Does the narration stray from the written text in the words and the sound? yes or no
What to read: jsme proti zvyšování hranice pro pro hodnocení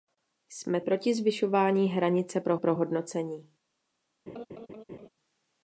yes